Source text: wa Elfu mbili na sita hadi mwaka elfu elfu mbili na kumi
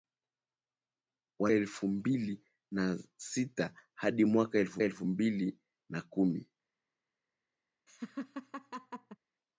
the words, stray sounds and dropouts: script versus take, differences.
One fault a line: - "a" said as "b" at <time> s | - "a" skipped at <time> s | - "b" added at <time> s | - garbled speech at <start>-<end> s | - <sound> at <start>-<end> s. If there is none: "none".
- laugh at 7.9-9.2 s